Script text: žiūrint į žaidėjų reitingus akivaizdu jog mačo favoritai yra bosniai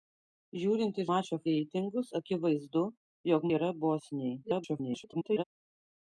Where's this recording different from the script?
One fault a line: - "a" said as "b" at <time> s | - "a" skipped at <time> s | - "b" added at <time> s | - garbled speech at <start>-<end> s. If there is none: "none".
- "žaidėjų" said as "mačo" at 1.1 s
- "mačo favoritai" skipped at 3.5 s
- garbled speech at 4.4-5.4 s